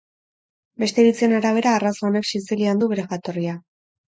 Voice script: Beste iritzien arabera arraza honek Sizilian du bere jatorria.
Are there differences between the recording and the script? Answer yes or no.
no